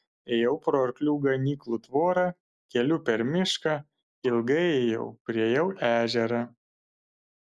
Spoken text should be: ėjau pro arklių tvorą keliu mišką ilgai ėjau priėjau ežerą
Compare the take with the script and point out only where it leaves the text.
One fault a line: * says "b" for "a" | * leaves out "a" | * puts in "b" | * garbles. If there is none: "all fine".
* puts in "ganyklų"
* puts in "per"